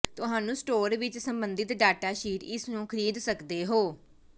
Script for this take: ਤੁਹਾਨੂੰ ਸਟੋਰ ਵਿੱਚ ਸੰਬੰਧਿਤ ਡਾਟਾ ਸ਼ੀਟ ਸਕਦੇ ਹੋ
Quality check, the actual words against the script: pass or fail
fail